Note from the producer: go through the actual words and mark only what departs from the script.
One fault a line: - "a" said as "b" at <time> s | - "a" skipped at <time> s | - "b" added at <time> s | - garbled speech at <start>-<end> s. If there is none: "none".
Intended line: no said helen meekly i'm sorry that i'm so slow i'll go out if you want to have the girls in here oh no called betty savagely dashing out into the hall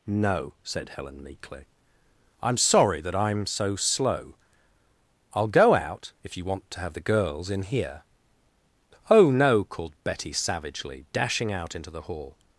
none